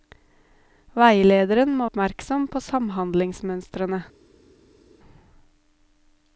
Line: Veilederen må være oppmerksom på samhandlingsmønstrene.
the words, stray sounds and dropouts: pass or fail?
fail